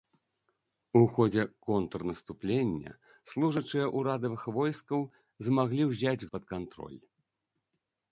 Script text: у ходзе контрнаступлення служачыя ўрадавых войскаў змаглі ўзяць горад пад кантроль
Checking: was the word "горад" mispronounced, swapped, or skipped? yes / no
yes